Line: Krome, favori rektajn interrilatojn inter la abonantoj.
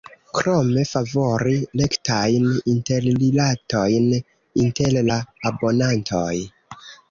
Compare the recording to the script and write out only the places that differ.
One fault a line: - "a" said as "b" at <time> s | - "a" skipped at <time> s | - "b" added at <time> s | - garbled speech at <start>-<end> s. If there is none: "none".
none